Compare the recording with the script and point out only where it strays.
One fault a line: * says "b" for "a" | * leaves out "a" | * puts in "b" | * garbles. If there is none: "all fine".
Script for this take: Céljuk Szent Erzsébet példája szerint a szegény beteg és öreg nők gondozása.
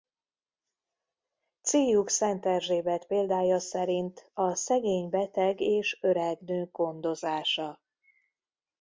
all fine